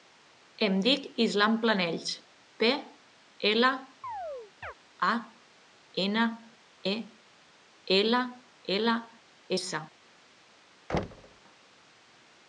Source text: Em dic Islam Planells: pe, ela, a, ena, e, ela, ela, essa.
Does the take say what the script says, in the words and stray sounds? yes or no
no